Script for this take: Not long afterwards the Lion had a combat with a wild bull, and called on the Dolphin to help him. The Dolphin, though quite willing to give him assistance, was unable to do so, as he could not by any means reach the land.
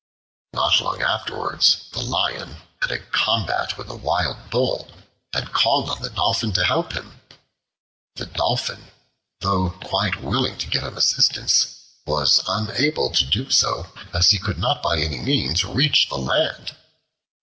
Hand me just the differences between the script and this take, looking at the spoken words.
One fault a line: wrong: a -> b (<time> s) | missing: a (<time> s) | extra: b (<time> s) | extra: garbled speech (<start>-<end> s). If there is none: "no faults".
no faults